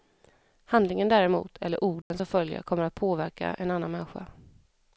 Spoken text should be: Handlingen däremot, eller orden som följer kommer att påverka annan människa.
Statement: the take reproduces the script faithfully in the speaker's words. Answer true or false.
false